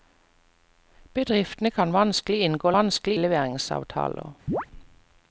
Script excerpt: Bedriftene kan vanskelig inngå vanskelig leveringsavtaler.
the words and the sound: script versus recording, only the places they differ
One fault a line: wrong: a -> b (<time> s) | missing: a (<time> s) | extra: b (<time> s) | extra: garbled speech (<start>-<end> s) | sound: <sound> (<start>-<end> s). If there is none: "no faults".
sound: chirp (4.5-4.7 s)